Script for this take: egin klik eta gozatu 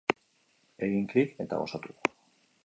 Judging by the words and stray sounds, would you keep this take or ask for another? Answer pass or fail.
pass